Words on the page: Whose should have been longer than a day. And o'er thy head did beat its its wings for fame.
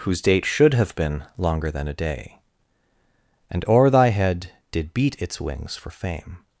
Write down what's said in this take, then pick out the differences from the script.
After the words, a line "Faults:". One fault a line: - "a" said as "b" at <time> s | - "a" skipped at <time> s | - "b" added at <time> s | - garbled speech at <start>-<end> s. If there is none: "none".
Whose date should have been longer than a day. And o'er thy head did beat its wings for fame.
Faults:
- "date" added at 0.2 s
- "its" skipped at 5.4 s